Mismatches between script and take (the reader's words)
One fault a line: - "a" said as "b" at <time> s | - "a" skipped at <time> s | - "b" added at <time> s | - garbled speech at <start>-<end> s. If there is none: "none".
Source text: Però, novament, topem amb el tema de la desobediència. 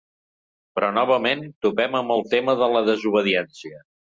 none